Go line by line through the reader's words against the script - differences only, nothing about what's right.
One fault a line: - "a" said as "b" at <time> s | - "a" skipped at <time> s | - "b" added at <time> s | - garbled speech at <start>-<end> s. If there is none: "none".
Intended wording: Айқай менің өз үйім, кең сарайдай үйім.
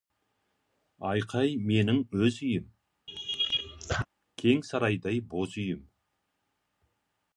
- "боз" added at 5.3 s